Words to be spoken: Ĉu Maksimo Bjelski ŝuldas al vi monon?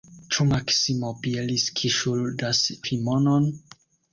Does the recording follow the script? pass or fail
fail